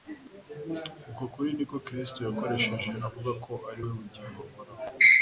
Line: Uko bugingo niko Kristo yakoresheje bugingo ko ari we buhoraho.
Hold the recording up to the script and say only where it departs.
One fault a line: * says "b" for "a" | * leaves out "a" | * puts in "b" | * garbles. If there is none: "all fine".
* says "kuri" for "bugingo"
* says "avuga" for "bugingo"
* puts in "bugingo"